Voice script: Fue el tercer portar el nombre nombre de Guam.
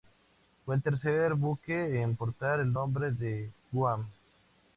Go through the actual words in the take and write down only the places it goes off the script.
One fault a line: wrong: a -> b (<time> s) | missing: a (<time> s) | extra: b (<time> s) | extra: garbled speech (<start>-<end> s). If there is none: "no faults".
extra: buque en (1.4 s)
missing: nombre (3.1 s)